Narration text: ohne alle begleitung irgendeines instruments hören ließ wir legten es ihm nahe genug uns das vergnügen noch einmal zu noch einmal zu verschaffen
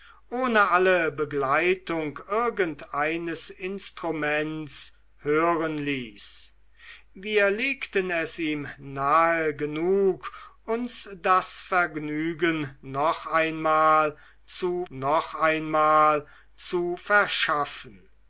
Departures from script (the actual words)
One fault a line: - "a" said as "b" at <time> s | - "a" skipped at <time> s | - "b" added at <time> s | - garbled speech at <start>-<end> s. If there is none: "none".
none